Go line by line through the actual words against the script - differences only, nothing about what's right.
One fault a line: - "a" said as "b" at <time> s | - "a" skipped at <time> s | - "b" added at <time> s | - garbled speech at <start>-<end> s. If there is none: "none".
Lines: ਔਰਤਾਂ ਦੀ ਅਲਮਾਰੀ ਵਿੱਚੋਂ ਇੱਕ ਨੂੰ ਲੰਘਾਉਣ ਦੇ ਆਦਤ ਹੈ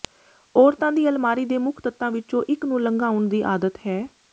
- "ਦੇ ਮੁੱਖ ਤੱਤਾਂ" added at 1.4 s
- "ਦੇ" said as "ਦੀ" at 3.3 s